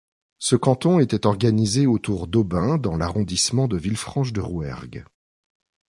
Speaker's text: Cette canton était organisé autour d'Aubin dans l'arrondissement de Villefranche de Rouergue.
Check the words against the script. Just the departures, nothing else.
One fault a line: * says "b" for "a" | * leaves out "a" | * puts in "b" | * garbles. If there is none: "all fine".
* says "Ce" for "Cette"